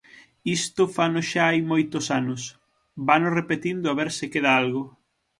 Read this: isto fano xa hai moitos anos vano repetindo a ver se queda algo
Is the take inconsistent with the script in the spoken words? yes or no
no